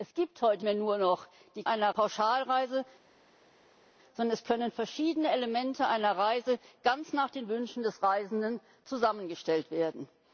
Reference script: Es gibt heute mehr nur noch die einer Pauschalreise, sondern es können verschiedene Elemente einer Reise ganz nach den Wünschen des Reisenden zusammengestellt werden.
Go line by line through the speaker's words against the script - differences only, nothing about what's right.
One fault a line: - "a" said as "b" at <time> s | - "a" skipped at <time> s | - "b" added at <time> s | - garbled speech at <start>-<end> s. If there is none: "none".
none